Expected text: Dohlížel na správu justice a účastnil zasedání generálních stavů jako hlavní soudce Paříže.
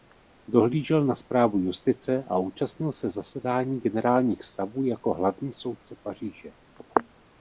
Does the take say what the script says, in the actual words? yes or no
no